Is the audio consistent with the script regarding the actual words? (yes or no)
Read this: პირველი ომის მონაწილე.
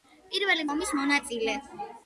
yes